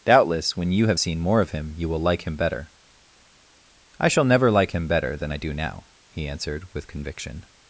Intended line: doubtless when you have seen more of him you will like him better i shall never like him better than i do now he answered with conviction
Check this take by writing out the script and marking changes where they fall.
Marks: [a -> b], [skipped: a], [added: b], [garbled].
doubtless when you have seen more of him you will like him better i shall never like him better than i do now he answered with conviction